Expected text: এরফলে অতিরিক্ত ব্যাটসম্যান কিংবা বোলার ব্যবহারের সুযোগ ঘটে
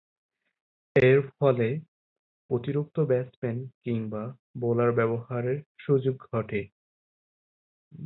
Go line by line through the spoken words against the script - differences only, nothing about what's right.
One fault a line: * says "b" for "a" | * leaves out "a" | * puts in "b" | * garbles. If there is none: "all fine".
all fine